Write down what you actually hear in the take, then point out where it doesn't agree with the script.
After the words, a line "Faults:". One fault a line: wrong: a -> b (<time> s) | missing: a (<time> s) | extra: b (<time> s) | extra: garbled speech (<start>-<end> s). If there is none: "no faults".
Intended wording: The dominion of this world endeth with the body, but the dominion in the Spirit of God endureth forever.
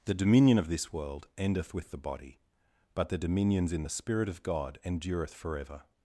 The dominion of this world endeth with the body, but the dominions in the Spirit of God endureth forever.
Faults:
wrong: dominion -> dominions (3.2 s)